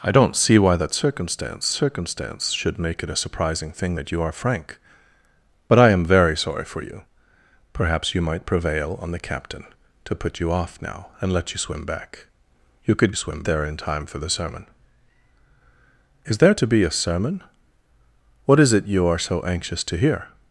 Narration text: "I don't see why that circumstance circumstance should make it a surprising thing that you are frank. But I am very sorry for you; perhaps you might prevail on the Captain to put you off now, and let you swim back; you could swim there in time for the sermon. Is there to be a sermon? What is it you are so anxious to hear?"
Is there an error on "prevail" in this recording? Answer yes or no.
no